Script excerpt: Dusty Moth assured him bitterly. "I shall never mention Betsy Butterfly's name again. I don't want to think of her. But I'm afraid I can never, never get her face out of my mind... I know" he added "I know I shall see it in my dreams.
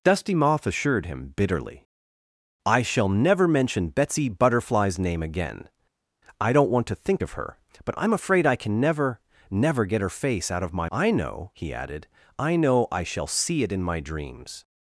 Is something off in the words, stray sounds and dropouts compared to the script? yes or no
yes